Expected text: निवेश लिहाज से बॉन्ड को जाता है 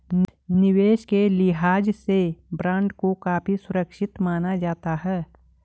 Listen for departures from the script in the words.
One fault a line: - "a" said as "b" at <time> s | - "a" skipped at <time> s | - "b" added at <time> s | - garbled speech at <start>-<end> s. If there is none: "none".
- "के" added at 1.0 s
- "काफी सुरक्षित माना" added at 3.2 s